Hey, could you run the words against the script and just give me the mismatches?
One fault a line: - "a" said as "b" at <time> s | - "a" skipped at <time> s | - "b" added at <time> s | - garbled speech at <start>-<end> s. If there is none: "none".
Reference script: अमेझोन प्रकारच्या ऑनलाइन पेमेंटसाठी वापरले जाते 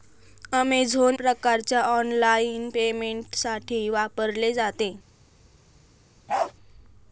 none